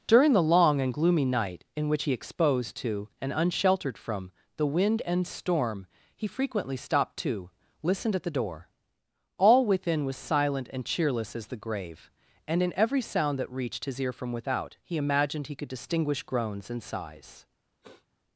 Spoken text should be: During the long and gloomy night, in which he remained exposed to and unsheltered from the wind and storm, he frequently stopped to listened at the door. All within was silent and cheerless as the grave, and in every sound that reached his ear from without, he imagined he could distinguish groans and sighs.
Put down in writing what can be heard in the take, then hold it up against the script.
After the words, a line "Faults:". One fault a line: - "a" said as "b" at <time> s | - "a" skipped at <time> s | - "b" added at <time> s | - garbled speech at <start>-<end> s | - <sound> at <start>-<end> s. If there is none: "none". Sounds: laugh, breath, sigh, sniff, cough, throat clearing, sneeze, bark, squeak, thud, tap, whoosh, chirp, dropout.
During the long and gloomy night, in which he exposed to and unsheltered from the wind and storm, he frequently stopped to listened at the door. All within was silent and cheerless as the grave, and in every sound that reached his ear from without, he imagined he could distinguish groans and sighs.
Faults:
- "remained" skipped at 2.1 s
- sniff at 17.8-18.1 s